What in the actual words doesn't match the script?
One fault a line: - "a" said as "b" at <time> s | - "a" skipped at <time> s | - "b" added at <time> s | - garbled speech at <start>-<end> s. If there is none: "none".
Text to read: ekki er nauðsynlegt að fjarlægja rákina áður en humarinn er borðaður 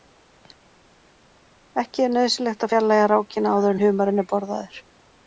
none